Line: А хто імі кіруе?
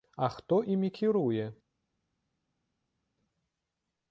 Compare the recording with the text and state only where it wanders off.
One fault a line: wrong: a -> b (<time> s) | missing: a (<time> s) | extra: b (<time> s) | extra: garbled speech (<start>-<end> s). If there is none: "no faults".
no faults